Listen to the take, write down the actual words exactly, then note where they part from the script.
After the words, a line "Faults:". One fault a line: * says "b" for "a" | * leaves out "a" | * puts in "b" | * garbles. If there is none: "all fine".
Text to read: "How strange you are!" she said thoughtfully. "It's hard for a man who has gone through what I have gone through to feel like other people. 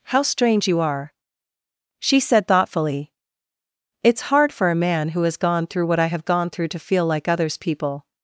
"How strange you are!" she said thoughtfully. "It's hard for a man who has gone through what I have gone through to feel like others people.
Faults:
* says "others" for "other"